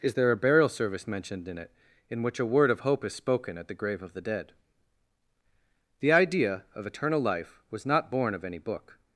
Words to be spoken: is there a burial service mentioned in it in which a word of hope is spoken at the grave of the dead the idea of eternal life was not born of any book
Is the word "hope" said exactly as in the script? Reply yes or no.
yes